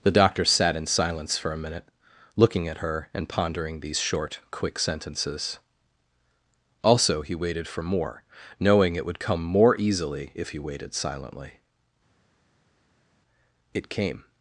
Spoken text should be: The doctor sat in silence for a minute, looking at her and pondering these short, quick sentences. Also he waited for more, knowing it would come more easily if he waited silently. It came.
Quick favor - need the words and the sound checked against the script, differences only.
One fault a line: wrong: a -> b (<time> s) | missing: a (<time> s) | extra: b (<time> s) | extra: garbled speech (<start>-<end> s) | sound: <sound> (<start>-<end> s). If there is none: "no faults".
no faults